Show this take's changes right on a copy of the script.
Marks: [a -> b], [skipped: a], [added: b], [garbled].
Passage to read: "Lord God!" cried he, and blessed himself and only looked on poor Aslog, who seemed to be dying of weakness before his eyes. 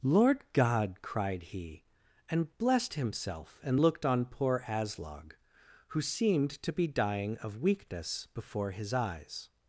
"Lord God!" cried he, and blessed himself and [skipped: only] looked on poor Aslog, who seemed to be dying of weakness before his eyes.